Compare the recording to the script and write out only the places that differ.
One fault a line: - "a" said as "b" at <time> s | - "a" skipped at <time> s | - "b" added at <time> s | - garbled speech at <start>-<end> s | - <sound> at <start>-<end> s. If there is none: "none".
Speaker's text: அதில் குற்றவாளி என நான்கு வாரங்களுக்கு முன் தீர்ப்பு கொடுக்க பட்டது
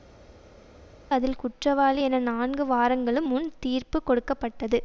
none